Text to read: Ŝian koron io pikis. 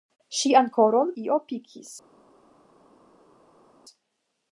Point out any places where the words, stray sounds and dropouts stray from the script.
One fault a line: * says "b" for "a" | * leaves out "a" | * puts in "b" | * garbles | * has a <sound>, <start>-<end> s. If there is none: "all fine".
all fine